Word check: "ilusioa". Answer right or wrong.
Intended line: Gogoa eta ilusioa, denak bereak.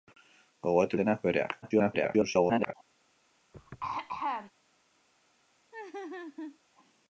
wrong